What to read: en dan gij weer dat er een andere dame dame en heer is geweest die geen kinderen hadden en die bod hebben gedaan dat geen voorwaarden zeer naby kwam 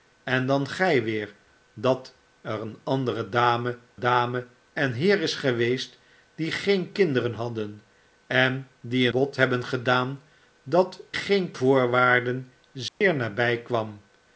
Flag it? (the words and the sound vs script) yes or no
yes